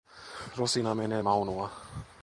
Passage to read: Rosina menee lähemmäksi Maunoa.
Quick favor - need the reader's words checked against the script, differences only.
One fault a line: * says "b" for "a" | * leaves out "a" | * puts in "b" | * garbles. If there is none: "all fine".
* leaves out "lähemmäksi"